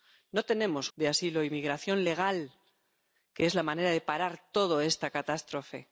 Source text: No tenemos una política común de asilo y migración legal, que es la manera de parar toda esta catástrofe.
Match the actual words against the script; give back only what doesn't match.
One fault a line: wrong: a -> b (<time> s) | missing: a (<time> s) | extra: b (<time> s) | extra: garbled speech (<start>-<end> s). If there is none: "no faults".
missing: una política común (0.9 s)